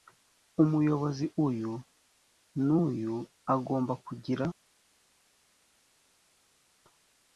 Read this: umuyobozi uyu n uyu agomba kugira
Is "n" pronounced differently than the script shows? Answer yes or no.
no